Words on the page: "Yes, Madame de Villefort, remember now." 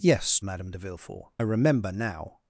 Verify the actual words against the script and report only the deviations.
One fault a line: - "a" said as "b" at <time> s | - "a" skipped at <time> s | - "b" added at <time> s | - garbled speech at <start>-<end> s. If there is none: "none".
none